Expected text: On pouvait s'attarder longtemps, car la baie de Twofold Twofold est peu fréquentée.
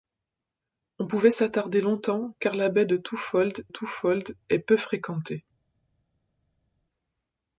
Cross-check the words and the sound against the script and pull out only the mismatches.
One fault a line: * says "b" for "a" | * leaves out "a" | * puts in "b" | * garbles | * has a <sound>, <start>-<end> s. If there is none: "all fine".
all fine